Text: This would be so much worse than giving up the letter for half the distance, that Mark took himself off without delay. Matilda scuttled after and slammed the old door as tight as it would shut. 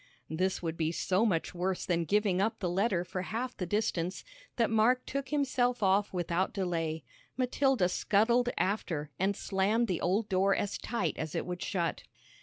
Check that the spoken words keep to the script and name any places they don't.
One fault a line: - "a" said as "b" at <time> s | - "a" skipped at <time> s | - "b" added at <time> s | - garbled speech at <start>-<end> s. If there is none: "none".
none